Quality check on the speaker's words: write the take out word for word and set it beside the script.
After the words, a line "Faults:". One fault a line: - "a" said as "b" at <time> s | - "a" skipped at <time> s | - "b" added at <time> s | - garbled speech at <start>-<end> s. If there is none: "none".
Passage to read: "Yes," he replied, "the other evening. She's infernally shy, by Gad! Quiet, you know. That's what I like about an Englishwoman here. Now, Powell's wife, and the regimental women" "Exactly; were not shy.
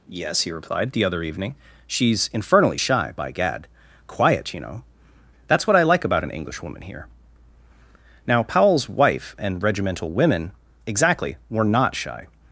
"Yes," he replied, "the other evening. She's infernally shy, by Gad! Quiet, you know. That's what I like about an Englishwoman here. Now, Powell's wife, and regimental women" "Exactly; were not shy.
Faults:
- "the" skipped at 9.6 s